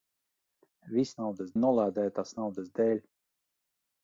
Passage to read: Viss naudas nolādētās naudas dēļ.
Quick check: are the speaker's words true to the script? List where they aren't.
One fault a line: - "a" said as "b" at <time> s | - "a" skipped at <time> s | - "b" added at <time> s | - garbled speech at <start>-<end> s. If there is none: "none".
none